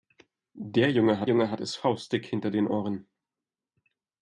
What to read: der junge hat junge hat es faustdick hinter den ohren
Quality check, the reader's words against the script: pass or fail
pass